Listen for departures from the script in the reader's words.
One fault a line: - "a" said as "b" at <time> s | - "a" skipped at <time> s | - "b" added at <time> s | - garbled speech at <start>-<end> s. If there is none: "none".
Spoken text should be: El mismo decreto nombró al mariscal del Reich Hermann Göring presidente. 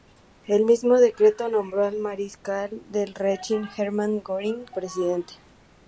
none